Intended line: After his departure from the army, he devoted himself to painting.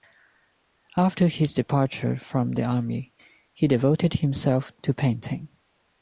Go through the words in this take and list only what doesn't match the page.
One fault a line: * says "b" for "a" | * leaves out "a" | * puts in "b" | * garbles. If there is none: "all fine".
all fine